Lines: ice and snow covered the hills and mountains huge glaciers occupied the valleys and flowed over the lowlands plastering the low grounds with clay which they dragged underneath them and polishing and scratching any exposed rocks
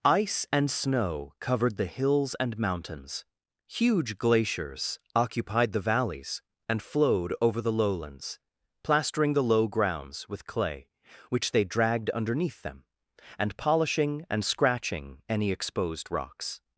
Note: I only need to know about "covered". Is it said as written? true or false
true